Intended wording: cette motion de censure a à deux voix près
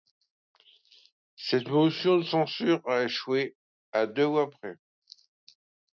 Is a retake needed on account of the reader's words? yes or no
yes